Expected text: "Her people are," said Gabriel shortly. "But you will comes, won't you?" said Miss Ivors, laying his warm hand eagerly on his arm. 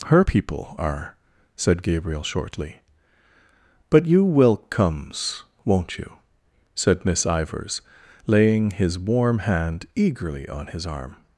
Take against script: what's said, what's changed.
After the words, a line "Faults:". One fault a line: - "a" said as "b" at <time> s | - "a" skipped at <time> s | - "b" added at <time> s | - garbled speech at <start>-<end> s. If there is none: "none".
"Her people are," said Gabriel shortly. "But you will comes, won't you?" said Miss Ivors, laying his warm hand eagerly on his arm.
Faults:
none